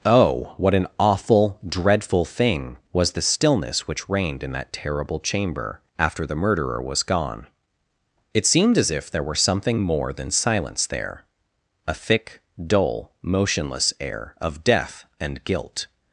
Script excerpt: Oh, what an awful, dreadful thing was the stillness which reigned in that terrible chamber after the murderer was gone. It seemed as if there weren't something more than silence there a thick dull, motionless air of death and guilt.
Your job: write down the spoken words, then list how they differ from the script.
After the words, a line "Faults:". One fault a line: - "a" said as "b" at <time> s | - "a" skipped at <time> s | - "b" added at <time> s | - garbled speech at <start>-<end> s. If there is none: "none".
Oh, what an awful, dreadful thing was the stillness which reigned in that terrible chamber after the murderer was gone. It seemed as if there were something more than silence there a thick dull, motionless air of death and guilt.
Faults:
- "weren't" said as "were" at 9.2 s